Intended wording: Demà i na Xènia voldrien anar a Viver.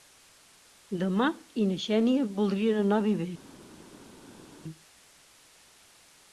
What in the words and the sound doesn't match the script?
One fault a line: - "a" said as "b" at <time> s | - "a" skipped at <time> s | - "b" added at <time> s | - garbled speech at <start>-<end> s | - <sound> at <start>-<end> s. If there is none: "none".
none